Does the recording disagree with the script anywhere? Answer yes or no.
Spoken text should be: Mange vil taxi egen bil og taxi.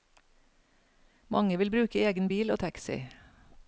yes